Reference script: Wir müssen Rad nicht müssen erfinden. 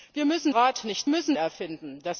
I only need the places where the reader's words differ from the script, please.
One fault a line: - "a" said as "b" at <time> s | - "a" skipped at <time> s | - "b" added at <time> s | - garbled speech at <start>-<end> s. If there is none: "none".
none